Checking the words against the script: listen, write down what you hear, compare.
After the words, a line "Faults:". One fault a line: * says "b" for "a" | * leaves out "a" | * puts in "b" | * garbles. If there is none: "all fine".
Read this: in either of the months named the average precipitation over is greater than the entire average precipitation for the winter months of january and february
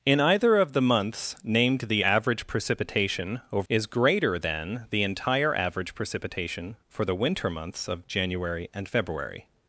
in either of the months named the average precipitation over is greater than the entire average precipitation for the winter months of january and february
Faults:
all fine